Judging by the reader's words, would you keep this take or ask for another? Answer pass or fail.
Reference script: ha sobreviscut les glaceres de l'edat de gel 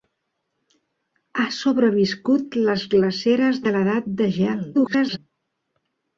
fail